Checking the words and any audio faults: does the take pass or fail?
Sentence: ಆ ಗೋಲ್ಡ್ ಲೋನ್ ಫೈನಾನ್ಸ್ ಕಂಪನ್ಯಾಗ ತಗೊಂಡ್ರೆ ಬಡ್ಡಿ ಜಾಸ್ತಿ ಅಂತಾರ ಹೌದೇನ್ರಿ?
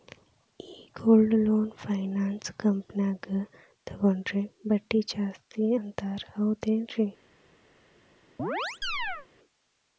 fail